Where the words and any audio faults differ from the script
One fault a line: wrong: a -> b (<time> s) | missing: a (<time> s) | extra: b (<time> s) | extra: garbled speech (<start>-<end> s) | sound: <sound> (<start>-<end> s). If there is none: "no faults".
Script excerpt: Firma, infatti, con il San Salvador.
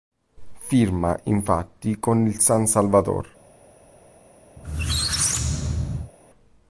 sound: squeak (4.6-6.1 s)